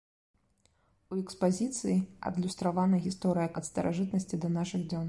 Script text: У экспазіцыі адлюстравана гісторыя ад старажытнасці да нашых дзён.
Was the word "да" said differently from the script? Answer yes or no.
no